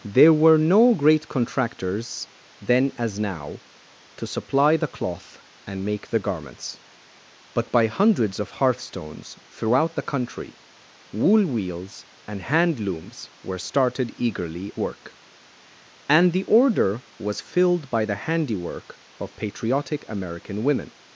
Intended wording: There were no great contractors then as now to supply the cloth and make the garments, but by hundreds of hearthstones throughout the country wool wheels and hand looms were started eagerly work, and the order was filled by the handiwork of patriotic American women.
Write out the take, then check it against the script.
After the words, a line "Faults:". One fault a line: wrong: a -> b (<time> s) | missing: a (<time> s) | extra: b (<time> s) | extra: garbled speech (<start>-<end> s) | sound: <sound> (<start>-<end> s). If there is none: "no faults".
There were no great contractors then as now to supply the cloth and make the garments, but by hundreds of hearthstones throughout the country wool wheels and hand looms were started eagerly work, and the order was filled by the handiwork of patriotic American women.
Faults:
no faults